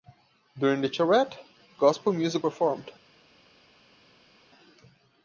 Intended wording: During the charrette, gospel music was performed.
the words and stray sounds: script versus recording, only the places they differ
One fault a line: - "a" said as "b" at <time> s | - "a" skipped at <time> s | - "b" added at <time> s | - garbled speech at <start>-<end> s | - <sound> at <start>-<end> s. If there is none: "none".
- "was" skipped at 2.4 s